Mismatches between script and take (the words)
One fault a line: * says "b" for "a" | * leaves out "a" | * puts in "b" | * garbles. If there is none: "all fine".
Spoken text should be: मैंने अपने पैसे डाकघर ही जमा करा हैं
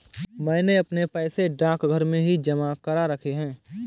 * puts in "में"
* puts in "रखे"